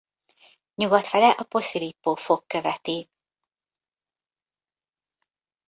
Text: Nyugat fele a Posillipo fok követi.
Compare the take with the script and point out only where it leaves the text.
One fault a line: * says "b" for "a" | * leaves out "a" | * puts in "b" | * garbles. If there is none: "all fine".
all fine